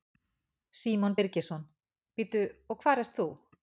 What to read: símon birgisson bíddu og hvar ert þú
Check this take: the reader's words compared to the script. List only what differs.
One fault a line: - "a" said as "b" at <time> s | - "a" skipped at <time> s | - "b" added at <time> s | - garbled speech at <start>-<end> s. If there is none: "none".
none